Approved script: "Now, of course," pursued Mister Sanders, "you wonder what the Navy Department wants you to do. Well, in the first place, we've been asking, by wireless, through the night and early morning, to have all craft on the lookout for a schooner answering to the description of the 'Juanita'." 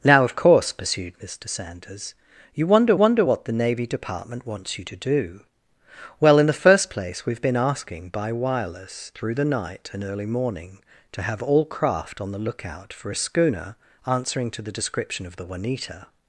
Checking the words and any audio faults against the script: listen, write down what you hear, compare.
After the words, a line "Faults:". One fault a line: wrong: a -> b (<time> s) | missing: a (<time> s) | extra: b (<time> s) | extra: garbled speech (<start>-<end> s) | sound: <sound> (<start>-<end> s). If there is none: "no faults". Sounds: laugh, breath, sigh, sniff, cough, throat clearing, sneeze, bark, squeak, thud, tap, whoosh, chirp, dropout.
"Now, of course," pursued Mister Sanders, "you wonder wonder what the Navy Department wants you to do. Well, in the first place, we've been asking, by wireless, through the night and early morning, to have all craft on the lookout for a schooner answering to the description of the 'Juanita'."
Faults:
extra: wonder (2.9 s)